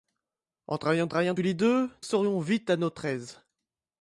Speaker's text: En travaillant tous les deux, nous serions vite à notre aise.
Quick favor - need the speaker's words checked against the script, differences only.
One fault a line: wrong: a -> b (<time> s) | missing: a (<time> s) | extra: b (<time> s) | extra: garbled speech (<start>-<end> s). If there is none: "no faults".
extra: travaillant (1.1 s)
missing: nous (1.9 s)